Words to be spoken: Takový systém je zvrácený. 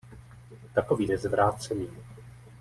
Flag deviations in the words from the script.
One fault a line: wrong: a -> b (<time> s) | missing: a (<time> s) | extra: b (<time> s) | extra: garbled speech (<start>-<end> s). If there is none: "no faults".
missing: systém (1.1 s)